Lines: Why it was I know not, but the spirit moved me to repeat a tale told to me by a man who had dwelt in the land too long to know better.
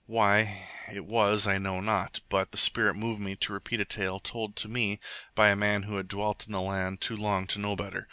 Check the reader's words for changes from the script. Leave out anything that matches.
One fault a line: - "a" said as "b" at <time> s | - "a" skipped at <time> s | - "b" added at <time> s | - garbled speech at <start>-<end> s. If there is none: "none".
none